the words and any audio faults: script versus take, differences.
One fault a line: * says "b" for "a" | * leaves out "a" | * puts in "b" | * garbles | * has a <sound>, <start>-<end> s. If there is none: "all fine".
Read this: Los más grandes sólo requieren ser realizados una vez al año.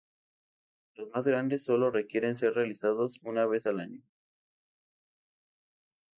all fine